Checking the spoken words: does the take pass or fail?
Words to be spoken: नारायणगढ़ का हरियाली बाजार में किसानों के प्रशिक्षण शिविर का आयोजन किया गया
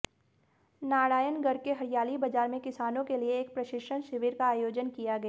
fail